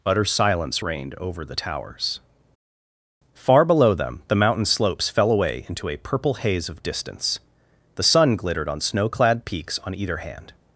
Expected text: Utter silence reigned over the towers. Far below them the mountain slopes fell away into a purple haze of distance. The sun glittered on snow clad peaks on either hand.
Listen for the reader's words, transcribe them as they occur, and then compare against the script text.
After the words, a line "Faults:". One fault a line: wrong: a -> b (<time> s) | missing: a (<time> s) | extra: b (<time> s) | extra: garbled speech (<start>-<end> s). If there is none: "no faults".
Utter silence reigned over the towers. Far below them the mountain slopes fell away into a purple haze of distance. The sun glittered on snow clad peaks on either hand.
Faults:
no faults